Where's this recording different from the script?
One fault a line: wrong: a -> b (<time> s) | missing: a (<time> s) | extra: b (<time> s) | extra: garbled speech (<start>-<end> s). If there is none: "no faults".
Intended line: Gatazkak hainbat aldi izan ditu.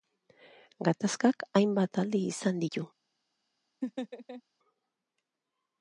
no faults